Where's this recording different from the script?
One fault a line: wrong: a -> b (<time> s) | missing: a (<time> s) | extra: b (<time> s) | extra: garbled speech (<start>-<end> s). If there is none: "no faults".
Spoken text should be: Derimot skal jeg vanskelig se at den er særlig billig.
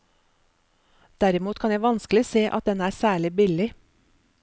wrong: skal -> kan (1.6 s)